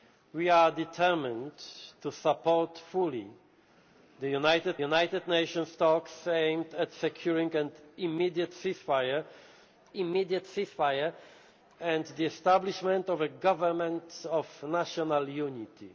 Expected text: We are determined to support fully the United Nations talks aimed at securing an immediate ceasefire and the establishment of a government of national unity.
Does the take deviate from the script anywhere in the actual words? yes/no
yes